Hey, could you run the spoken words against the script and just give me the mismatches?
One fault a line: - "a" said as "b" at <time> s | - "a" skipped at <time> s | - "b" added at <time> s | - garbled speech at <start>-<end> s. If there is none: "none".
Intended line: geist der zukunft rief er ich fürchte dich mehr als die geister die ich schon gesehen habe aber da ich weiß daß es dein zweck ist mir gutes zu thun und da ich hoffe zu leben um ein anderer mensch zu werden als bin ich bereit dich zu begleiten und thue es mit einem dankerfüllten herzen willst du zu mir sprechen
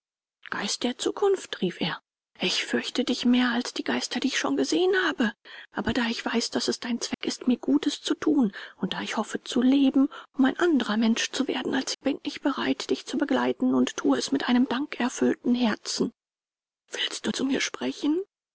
none